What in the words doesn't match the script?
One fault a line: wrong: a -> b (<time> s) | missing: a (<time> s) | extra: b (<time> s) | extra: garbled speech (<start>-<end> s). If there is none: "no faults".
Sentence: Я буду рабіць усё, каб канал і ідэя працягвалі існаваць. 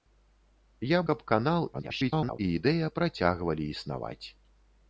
missing: буду рабіць усё (1.0 s)
extra: garbled speech (1.7-2.4 s)